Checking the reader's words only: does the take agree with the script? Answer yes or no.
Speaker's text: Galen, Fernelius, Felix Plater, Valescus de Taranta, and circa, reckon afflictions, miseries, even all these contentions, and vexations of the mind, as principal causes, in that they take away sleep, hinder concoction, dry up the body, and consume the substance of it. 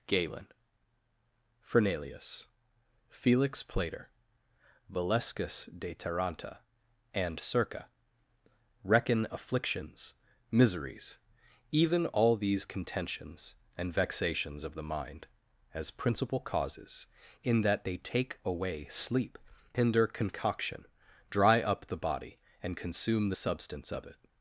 yes